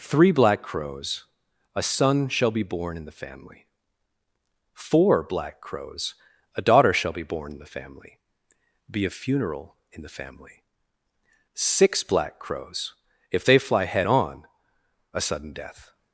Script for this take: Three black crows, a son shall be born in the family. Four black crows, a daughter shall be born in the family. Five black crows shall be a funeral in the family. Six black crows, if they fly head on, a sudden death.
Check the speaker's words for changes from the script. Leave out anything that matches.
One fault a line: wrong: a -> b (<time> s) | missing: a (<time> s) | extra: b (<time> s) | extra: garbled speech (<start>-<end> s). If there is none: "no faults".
missing: Five black crows shall (8.2 s)